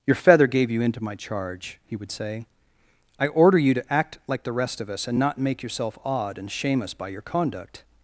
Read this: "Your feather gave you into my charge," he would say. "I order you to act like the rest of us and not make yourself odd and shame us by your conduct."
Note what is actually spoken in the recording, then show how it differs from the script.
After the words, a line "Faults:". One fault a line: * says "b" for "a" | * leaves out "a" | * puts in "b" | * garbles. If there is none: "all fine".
"Your feather gave you into my charge," he would say. "I order you to act like the rest of us and not make yourself odd and shame us by your conduct."
Faults:
all fine